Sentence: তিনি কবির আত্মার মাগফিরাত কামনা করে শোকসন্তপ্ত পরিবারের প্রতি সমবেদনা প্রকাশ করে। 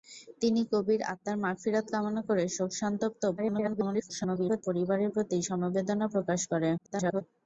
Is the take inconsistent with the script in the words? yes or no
yes